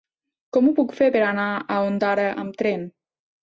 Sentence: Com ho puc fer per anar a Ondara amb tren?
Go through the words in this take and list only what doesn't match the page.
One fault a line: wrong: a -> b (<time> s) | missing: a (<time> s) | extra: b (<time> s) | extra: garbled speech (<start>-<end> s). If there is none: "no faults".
no faults